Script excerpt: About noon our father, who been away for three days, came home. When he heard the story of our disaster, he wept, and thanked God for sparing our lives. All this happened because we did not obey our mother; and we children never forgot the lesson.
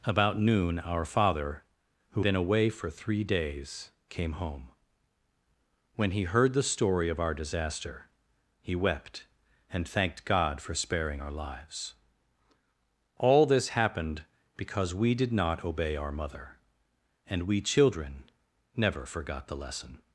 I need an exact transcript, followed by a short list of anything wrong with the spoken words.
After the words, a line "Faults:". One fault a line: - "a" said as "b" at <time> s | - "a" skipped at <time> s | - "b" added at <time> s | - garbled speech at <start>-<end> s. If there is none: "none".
About noon our father, who been away for three days, came home. When he heard the story of our disaster, he wept, and thanked God for sparing our lives. All this happened because we did not obey our mother; and we children never forgot the lesson.
Faults:
none